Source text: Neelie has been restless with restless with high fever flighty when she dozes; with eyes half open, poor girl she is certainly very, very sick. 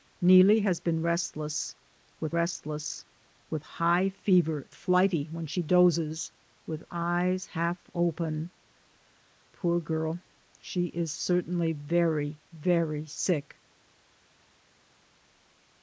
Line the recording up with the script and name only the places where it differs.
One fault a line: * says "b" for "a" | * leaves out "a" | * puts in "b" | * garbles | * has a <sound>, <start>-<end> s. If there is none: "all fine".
all fine